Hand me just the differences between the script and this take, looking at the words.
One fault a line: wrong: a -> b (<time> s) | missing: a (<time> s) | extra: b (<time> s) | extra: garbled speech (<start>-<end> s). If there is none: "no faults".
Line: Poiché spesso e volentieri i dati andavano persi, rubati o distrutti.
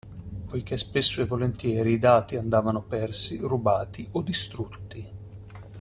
no faults